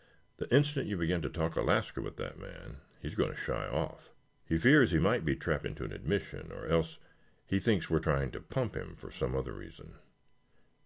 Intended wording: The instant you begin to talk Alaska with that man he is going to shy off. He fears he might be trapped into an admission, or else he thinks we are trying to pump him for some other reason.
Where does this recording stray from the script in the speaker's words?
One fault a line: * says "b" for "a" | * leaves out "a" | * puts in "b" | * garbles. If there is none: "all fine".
all fine